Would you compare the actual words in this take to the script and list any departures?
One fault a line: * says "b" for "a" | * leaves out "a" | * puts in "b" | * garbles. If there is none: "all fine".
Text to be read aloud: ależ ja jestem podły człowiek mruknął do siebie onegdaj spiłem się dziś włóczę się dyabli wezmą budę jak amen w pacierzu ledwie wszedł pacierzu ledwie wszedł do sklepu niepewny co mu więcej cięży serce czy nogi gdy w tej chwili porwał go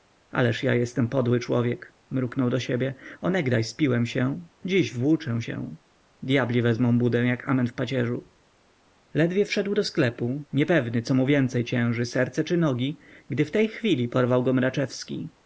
* leaves out "pacierzu ledwie wszedł"